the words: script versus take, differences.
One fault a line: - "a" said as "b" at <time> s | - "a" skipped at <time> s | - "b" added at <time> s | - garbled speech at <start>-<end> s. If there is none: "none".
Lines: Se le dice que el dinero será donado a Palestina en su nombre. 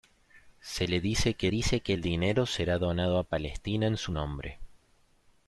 - "dice que" added at 1.5 s